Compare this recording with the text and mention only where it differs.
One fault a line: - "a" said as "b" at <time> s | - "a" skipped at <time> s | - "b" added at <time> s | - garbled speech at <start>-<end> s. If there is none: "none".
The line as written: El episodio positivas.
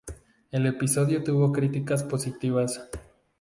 - "tuvo críticas" added at 1.2 s